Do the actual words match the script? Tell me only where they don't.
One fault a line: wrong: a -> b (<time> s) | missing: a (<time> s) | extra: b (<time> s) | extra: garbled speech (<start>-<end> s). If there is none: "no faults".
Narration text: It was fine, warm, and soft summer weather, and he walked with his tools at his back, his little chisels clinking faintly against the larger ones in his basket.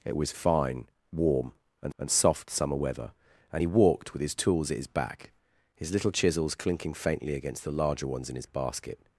extra: and (2.0 s)